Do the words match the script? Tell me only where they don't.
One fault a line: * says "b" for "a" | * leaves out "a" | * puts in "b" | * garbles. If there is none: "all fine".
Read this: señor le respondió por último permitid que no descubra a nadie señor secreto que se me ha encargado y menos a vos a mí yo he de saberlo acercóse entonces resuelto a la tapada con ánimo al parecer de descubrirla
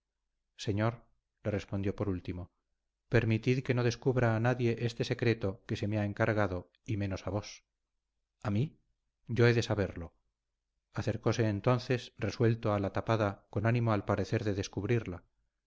* says "este" for "señor"